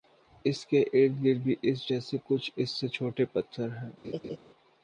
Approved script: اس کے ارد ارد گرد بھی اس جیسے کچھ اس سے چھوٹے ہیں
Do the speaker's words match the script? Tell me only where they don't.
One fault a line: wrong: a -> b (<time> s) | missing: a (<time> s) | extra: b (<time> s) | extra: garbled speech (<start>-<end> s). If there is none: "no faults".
missing: ارد (1.2 s)
extra: پتھر (3.3 s)